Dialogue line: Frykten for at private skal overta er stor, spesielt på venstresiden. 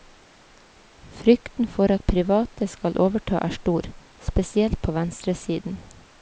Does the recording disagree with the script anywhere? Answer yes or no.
no